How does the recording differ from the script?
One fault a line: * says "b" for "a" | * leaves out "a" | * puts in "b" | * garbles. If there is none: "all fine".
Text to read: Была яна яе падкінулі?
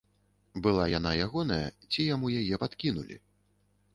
* puts in "ягоная ці яму"